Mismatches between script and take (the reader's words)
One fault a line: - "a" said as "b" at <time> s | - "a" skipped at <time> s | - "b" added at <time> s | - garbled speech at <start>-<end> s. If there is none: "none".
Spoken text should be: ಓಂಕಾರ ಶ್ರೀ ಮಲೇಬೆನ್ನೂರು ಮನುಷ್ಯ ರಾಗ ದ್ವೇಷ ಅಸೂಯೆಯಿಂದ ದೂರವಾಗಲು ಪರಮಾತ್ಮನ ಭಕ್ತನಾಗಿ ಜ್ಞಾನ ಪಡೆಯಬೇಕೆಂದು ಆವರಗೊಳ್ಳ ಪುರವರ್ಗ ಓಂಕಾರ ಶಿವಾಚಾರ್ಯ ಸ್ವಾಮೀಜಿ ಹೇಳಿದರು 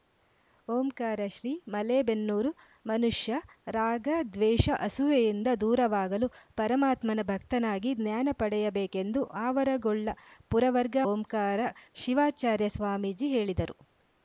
none